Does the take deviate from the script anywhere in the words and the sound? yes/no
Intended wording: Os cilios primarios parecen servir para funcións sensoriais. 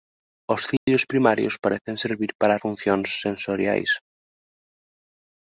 yes